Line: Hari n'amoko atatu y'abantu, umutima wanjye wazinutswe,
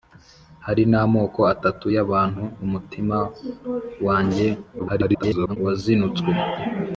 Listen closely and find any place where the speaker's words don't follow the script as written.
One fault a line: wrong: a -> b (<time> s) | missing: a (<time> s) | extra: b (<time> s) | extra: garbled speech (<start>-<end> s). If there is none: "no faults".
extra: garbled speech (4.8-5.6 s)